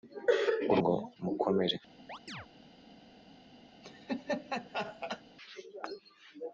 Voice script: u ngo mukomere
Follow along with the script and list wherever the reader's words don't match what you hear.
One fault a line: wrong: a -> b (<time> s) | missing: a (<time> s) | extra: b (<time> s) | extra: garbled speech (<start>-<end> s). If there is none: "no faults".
no faults